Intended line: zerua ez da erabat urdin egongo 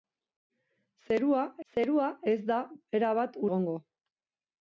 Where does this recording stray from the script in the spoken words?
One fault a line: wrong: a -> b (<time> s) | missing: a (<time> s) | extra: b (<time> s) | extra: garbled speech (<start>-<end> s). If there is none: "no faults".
extra: zerua (1.7 s)
missing: urdin (3.4 s)